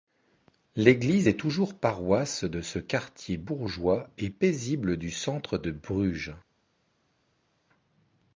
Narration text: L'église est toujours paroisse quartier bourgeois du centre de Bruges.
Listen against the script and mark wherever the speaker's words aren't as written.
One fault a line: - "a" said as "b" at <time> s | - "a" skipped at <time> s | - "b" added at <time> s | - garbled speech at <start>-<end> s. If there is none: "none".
- "de ce" added at 2.4 s
- "et paisible" added at 4.2 s